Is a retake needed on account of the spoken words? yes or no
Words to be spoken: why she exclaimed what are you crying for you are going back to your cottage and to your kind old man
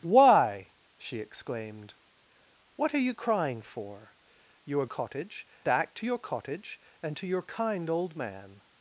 yes